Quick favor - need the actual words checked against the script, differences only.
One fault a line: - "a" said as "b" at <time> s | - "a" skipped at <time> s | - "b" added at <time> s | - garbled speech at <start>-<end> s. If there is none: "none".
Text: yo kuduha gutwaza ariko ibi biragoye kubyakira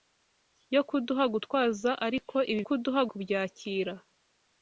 - "biragoye" said as "kuduha" at 2.6 s